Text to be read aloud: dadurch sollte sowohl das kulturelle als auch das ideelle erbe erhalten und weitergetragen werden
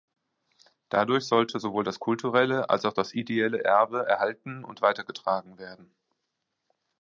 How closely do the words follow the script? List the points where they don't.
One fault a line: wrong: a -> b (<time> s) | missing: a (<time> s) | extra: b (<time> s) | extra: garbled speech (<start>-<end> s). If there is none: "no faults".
no faults